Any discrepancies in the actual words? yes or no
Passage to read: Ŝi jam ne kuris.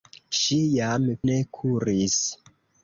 no